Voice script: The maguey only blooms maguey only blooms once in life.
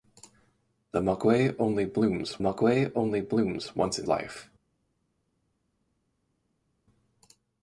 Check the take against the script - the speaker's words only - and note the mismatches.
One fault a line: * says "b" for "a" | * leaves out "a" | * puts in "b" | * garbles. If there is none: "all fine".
all fine